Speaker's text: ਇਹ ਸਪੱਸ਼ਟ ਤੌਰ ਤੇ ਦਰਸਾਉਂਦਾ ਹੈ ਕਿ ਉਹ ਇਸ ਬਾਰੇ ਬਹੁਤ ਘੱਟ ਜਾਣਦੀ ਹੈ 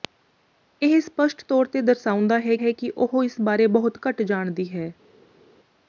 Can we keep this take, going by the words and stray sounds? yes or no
no